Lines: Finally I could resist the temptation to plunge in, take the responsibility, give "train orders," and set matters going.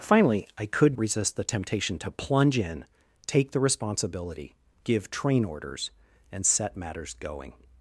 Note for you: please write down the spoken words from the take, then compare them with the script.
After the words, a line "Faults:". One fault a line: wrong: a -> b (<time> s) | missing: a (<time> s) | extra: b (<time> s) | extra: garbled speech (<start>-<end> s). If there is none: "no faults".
Finally I could resist the temptation to plunge in, take the responsibility, give "train orders," and set matters going.
Faults:
no faults